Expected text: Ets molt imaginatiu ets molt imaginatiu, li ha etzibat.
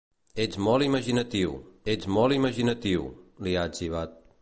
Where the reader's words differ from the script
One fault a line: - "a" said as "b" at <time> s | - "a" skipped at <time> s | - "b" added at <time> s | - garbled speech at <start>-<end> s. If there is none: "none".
none